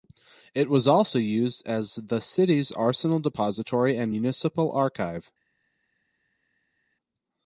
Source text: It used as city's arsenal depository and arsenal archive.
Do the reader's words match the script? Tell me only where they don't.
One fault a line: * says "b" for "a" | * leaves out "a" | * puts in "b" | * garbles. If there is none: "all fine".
* puts in "was also"
* puts in "the"
* says "municipal" for "arsenal"